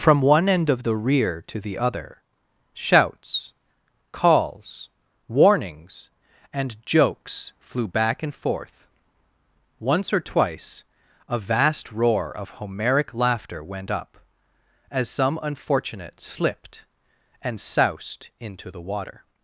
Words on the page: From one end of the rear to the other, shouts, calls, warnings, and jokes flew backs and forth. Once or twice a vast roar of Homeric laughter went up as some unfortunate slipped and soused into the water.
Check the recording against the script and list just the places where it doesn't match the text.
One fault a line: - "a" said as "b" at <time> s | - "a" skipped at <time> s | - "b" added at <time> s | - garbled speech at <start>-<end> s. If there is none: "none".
- "backs" said as "back" at 7.9 s